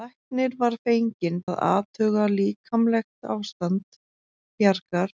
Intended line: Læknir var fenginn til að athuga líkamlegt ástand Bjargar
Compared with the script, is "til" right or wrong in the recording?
wrong